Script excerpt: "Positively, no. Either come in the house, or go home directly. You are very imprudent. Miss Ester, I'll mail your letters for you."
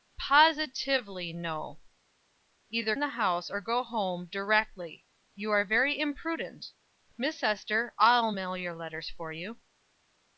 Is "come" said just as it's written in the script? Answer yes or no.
no